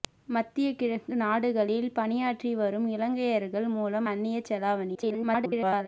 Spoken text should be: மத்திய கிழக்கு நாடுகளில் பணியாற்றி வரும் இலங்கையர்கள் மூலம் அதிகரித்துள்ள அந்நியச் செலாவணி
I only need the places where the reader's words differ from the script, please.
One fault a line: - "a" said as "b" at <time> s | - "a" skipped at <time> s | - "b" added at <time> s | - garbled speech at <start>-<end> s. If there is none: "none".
- "அதிகரித்துள்ள" skipped at 4.1 s
- garbled speech at 4.9-5.9 s